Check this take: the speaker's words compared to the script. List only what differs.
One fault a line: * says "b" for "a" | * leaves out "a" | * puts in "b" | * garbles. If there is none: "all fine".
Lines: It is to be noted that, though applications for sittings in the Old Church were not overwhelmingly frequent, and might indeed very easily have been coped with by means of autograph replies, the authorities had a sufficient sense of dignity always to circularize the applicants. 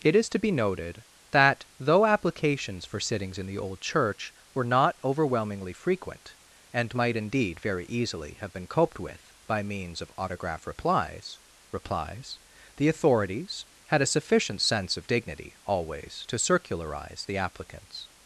* puts in "replies"